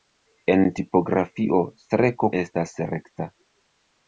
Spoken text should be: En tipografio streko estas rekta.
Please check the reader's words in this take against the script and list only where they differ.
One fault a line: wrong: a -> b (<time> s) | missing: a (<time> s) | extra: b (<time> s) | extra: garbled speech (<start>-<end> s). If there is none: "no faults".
no faults